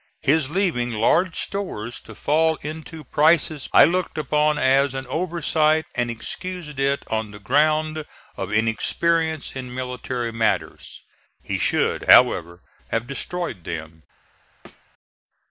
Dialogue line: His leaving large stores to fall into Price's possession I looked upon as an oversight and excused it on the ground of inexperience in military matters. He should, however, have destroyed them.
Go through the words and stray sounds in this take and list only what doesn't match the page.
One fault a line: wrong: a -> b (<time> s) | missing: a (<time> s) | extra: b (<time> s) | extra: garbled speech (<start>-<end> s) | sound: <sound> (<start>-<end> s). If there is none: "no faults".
missing: possession (3.7 s)
sound: thud (14.6-14.8 s)